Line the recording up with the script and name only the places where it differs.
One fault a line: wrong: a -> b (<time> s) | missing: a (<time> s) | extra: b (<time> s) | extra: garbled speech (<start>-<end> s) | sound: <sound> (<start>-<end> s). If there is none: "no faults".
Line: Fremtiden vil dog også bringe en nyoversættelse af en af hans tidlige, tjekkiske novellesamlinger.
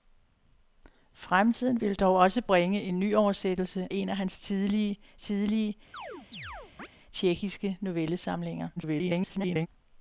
missing: af (3.9 s)
extra: tidlige (5.2 s)
sound: chirp (5.9-6.9 s)
extra: garbled speech (8.8-9.7 s)